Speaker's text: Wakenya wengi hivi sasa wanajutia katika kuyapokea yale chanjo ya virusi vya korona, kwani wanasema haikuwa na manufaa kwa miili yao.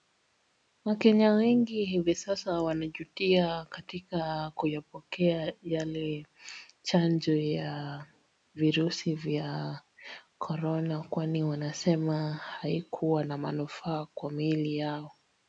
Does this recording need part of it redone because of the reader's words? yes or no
no